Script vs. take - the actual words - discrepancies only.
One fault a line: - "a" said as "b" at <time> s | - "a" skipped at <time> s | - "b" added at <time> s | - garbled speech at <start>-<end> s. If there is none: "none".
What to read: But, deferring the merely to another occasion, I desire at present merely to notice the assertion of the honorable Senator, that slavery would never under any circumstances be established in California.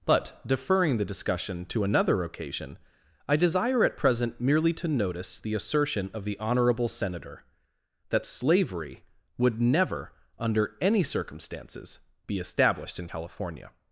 - "merely" said as "discussion" at 1.1 s